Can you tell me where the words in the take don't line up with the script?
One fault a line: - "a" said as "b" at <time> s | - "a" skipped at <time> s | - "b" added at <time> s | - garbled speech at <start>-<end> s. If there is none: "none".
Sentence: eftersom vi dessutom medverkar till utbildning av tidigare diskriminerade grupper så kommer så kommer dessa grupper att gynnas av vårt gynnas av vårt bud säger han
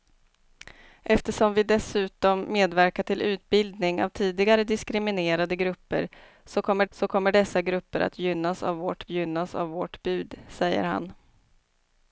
none